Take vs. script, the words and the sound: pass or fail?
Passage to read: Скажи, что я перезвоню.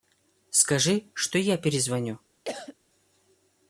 fail